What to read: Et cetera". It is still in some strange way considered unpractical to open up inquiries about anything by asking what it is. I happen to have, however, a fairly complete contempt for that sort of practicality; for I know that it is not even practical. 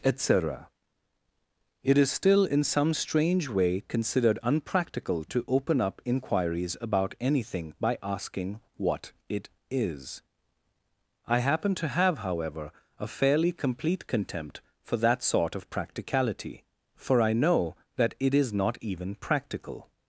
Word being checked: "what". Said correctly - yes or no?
yes